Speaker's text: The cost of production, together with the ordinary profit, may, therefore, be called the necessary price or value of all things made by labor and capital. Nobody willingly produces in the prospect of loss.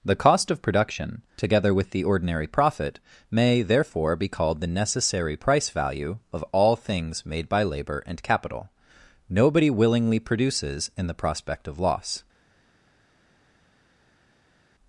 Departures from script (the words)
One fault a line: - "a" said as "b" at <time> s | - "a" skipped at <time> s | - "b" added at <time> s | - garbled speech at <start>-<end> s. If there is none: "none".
- "or" skipped at 5.7 s